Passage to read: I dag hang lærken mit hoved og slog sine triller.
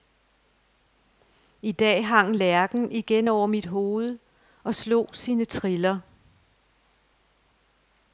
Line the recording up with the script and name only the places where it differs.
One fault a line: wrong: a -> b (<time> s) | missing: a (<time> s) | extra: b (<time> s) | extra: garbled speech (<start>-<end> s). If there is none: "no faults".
extra: igen over (2.9 s)